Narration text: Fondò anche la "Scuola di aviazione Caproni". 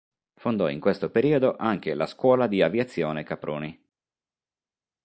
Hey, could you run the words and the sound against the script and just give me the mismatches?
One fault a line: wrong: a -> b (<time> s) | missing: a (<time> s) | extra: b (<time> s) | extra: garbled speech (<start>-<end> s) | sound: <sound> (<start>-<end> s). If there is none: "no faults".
extra: in questo periodo (0.7 s)